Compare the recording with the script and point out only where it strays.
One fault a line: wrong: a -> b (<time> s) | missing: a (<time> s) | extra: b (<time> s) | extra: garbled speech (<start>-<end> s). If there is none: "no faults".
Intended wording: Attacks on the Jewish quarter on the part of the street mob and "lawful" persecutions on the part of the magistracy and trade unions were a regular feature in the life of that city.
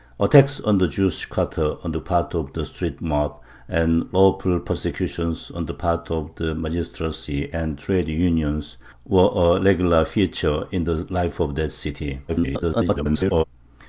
extra: garbled speech (12.3-13.4 s)